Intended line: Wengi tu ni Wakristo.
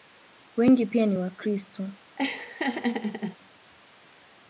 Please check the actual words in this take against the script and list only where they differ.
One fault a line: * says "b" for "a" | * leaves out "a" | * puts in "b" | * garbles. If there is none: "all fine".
* says "pia" for "tu"